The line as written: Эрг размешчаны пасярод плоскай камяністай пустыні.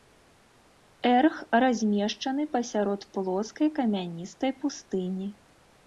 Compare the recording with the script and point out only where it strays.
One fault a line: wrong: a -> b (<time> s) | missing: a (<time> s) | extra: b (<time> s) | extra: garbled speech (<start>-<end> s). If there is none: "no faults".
no faults